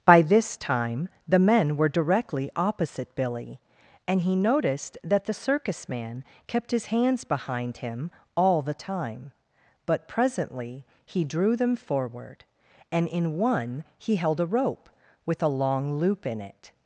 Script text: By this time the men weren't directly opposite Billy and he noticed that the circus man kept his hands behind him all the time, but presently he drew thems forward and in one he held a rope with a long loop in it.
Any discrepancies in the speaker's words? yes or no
yes